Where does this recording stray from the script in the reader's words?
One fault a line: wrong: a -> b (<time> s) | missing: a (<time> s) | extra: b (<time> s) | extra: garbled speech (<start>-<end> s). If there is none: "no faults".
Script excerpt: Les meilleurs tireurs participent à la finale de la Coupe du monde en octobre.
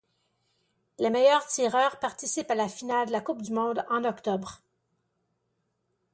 no faults